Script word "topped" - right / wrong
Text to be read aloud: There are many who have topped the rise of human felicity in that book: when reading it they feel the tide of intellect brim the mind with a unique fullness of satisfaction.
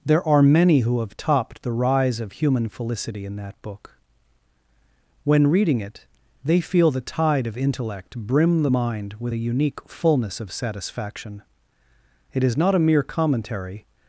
right